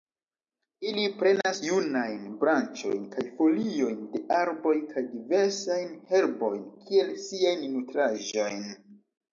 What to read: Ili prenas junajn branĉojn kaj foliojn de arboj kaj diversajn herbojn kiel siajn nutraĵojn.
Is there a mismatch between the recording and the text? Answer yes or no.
no